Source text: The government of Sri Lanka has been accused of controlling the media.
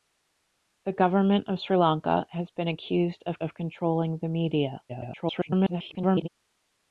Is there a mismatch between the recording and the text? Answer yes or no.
yes